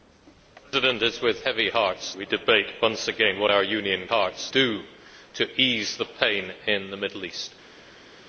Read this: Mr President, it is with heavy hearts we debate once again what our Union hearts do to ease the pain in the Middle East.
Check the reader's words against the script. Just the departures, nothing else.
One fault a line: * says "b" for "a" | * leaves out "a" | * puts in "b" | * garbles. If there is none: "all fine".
all fine